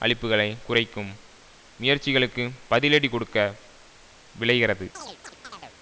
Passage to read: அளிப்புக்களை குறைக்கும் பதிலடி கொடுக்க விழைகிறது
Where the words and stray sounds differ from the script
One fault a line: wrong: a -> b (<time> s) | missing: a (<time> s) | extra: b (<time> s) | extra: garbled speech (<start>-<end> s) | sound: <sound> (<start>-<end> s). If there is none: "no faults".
extra: முயற்சிகளுக்கு (1.8 s)
sound: chirp (4.9-5.8 s)